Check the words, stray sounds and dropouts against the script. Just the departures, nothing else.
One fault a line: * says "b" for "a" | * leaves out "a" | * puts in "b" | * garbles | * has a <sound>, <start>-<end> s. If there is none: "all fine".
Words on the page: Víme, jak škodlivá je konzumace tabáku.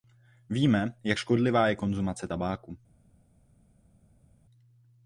all fine